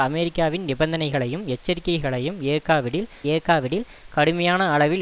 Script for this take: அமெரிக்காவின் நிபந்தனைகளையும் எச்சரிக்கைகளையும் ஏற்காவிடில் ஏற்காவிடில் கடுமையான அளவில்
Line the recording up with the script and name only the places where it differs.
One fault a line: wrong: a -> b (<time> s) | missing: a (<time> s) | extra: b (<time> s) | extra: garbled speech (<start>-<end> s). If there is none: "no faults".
no faults